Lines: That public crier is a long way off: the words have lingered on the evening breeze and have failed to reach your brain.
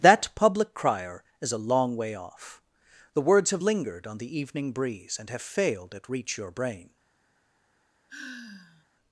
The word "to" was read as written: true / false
false